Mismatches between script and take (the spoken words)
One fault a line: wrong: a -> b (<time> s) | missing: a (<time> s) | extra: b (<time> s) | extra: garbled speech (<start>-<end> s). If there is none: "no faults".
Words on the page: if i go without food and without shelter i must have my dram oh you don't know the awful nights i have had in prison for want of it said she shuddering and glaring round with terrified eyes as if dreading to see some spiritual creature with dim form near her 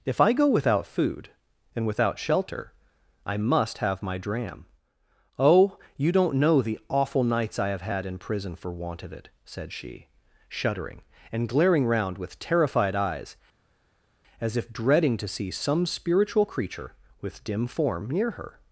no faults